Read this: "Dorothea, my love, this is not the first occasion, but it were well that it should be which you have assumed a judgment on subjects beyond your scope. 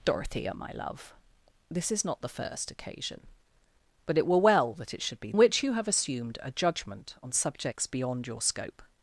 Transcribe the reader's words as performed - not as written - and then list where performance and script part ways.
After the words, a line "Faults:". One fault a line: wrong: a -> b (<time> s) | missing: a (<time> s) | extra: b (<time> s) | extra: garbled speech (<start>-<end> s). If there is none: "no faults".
"Dorothea, my love, this is not the first occasion, but it were well that it should be which you have assumed a judgment on subjects beyond your scope.
Faults:
no faults